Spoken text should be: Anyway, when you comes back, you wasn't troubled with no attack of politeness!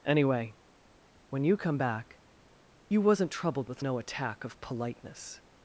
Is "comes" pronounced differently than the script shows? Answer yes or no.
yes